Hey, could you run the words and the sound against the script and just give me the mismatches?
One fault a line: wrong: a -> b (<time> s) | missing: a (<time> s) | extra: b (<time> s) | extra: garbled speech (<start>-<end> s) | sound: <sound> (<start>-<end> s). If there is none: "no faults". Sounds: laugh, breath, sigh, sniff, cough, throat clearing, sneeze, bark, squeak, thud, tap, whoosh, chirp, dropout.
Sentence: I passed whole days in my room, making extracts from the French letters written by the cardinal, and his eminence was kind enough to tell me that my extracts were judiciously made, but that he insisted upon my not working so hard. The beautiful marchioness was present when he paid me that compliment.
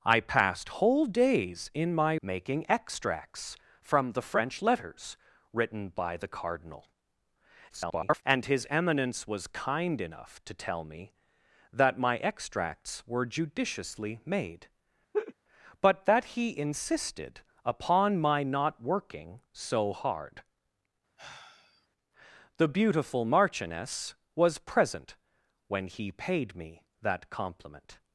missing: room (2.1 s)
extra: garbled speech (7.7-8.2 s)
sound: laugh (15.1-15.3 s)
sound: sigh (21.2-21.9 s)